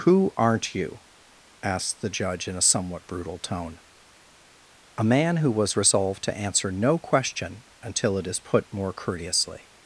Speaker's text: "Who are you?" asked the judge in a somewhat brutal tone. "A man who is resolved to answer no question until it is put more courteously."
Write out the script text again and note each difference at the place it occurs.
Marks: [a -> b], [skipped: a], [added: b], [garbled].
"Who [are -> aren't] you?" asked the judge in a somewhat brutal tone. "A man who [is -> was] resolved to answer no question until it is put more courteously."